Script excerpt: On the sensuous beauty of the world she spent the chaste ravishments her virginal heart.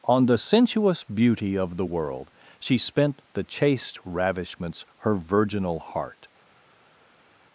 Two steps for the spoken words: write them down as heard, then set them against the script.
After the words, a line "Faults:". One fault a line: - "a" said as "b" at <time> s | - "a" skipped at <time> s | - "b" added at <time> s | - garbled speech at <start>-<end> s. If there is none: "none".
On the sensuous beauty of the world she spent the chaste ravishments her virginal heart.
Faults:
none